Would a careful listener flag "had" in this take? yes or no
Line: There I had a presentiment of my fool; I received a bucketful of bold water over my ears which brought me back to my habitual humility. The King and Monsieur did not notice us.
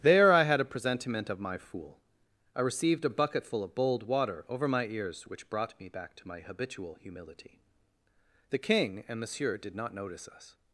no